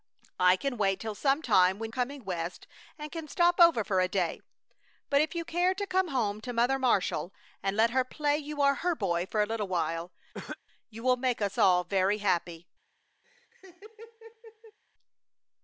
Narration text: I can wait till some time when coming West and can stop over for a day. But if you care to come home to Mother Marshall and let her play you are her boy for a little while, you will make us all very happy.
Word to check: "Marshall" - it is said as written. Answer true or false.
true